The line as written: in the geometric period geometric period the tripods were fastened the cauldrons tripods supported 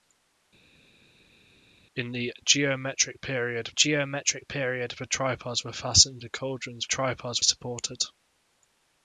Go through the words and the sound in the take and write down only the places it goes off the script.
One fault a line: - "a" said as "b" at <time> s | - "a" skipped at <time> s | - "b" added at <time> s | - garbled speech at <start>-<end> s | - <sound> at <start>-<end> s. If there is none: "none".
none